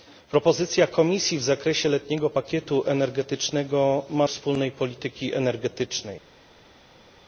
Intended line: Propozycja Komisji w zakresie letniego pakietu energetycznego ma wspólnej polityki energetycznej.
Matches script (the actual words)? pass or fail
pass